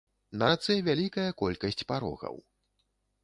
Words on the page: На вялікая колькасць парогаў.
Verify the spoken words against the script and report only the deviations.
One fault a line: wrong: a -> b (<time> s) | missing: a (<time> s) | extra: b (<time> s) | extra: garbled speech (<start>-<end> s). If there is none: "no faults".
extra: рацэ (0.5 s)